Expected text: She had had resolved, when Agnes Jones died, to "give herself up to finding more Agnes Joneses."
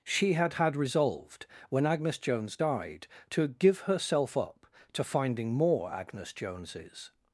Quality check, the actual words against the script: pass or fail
pass